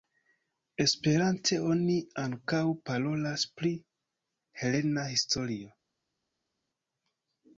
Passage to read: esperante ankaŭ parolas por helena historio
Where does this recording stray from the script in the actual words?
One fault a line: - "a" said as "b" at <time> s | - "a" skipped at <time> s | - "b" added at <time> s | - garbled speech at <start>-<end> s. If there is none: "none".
- "oni" added at 1.7 s
- "por" said as "pri" at 3.6 s